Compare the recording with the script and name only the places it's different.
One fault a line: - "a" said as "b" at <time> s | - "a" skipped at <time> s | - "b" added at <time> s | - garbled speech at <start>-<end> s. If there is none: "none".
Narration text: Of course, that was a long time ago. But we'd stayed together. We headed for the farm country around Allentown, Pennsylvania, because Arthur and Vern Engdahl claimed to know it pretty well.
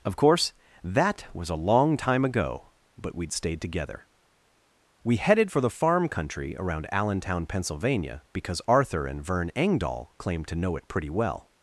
none